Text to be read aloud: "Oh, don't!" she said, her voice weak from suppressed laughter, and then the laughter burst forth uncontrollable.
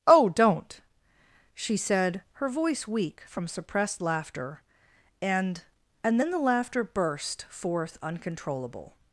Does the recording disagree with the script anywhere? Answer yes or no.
yes